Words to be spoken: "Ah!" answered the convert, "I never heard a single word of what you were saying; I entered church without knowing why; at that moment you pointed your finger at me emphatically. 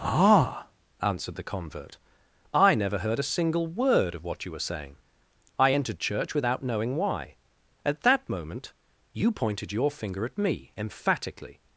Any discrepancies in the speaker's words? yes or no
no